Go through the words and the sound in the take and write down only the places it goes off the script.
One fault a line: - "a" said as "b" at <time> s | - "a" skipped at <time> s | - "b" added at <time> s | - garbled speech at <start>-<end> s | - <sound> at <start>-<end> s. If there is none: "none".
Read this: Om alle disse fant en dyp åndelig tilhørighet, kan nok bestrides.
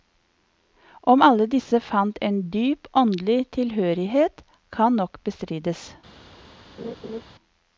- laugh at 6.8-7.2 s